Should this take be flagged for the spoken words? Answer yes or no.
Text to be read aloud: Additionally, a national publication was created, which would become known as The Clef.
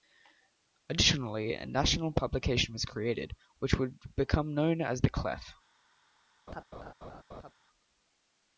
no